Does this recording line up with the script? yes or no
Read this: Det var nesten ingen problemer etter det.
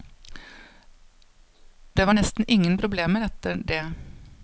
yes